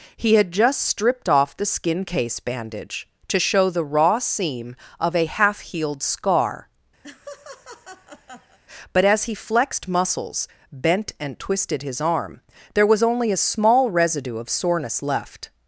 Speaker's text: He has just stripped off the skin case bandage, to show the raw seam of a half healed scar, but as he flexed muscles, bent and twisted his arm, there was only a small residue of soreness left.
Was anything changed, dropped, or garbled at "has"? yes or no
yes